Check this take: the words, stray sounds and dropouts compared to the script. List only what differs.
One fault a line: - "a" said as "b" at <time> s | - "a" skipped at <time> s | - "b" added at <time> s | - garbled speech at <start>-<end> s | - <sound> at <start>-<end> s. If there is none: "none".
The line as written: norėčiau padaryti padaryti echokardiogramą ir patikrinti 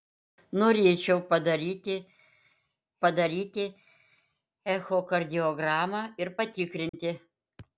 - dropout at 6.9-6.9 s